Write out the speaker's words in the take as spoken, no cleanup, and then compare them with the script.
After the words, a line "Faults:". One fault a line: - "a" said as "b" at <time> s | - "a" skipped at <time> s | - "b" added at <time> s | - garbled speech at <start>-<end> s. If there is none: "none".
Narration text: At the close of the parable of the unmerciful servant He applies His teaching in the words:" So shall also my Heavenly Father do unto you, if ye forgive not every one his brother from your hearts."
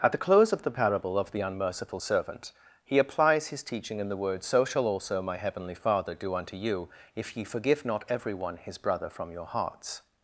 At the close of the parable of the unmerciful servant He applies His teaching in the words:" So shall also my Heavenly Father do unto you, if ye forgive not every one his brother from your hearts."
Faults:
none